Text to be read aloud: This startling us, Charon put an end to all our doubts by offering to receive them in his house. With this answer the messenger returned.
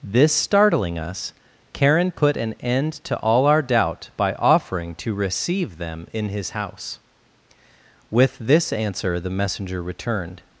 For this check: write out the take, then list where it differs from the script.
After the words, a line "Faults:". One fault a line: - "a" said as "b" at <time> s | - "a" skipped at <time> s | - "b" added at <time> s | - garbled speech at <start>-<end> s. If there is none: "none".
This startling us, Charon put an end to all our doubt by offering to receive them in his house. With this answer the messenger returned.
Faults:
- "doubts" said as "doubt" at 3.6 s